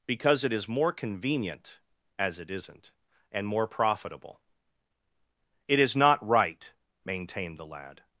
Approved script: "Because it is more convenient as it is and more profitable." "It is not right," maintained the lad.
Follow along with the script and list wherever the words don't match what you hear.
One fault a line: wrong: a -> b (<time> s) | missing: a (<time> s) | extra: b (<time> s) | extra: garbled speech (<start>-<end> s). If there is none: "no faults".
wrong: is -> isn't (2.5 s)